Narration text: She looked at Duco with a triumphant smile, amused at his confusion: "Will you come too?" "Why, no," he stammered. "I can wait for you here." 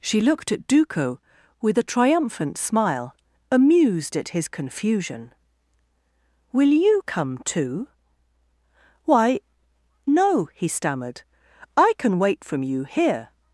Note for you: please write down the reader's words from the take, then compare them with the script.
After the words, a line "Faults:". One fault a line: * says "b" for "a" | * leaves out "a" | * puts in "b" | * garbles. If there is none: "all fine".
She looked at Duco with a triumphant smile, amused at his confusion: "Will you come too?" "Why, no," he stammered. "I can wait from you here."
Faults:
* says "from" for "for"